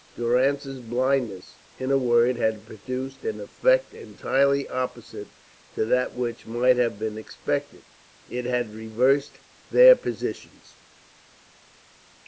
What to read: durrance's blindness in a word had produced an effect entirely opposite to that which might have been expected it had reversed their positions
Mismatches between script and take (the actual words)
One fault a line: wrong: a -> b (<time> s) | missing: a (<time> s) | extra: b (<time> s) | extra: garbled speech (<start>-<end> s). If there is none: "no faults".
no faults